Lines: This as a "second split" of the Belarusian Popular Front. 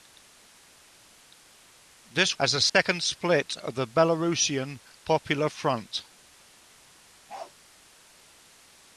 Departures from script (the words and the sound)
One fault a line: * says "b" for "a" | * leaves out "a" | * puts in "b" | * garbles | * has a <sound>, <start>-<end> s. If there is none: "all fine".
* has a dropout, 2.7-2.7 s
* has a bark, 7.3-7.5 s